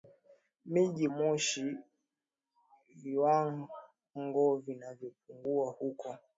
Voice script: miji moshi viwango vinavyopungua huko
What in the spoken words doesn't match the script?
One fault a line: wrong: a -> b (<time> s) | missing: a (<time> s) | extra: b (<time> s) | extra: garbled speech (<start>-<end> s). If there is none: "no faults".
no faults